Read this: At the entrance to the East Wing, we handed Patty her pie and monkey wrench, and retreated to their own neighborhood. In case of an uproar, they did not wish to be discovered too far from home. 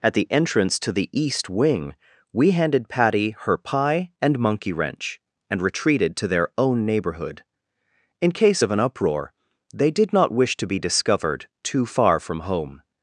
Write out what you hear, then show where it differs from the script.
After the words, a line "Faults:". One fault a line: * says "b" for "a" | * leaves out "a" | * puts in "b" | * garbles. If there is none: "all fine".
At the entrance to the East Wing, we handed Patty her pie and monkey wrench, and retreated to their own neighborhood. In case of an uproar, they did not wish to be discovered too far from home.
Faults:
all fine